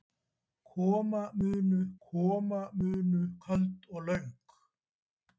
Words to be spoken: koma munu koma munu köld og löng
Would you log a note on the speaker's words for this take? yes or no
no